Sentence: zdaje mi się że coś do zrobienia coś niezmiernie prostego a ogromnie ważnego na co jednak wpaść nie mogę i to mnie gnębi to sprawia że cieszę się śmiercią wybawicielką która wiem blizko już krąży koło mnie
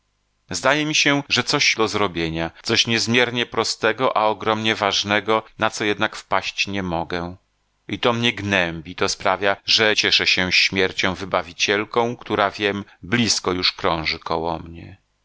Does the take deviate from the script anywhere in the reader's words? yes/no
no